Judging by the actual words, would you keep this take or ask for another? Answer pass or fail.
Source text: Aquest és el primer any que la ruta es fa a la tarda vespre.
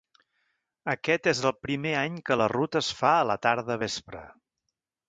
pass